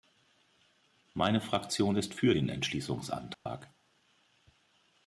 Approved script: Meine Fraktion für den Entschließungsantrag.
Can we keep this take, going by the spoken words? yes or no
no